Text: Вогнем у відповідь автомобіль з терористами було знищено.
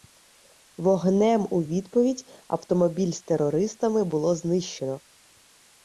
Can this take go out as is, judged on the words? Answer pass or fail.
pass